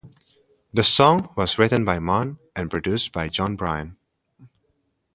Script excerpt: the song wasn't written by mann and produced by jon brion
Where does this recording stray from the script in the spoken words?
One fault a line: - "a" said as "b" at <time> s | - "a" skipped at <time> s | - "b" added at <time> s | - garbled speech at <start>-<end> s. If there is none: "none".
- "wasn't" said as "was" at 1.4 s